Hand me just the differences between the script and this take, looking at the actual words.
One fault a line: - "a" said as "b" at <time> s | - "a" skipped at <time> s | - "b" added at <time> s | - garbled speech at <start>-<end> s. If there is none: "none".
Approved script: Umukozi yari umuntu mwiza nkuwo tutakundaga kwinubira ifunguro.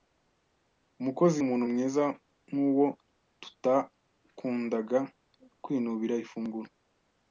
- "yari" skipped at 1.4 s